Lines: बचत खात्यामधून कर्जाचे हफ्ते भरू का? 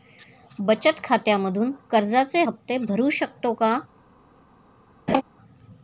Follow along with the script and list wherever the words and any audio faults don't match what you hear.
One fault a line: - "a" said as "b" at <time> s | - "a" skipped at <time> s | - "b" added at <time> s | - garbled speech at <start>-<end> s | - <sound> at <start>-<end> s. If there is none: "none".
- "शकतो" added at 3.1 s
- laugh at 5.1-5.2 s